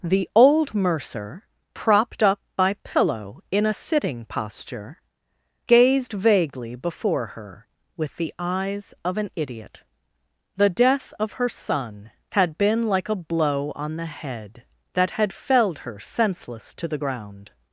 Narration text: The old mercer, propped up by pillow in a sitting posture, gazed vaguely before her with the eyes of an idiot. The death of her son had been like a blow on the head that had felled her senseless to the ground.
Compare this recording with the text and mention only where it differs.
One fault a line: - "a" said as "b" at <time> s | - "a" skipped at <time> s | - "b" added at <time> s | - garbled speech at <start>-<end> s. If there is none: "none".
none